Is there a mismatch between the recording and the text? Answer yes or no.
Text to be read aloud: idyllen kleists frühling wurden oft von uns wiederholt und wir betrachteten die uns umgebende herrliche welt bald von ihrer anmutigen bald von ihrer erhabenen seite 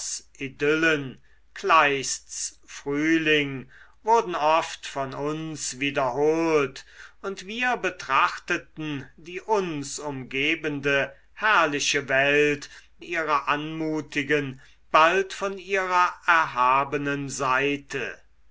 yes